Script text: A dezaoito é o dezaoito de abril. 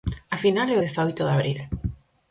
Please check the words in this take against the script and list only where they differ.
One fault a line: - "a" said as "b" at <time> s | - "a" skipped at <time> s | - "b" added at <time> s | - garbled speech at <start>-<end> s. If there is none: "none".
- "dezaoito" said as "final" at 0.4 s